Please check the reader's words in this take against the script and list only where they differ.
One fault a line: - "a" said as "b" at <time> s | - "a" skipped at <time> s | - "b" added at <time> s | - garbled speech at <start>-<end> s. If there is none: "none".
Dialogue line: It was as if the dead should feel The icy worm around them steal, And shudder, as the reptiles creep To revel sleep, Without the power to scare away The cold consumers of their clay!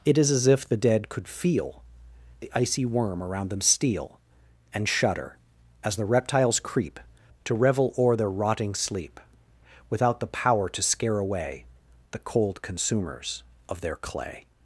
- "was" said as "is" at 0.2 s
- "should" said as "could" at 1.1 s
- "o'er their rotting" added at 8.0 s